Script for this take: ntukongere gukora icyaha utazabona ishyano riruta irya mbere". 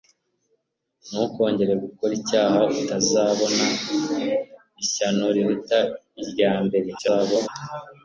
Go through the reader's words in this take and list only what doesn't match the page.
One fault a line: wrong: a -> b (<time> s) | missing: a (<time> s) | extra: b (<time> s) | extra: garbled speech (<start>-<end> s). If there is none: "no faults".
extra: garbled speech (7.0-7.5 s)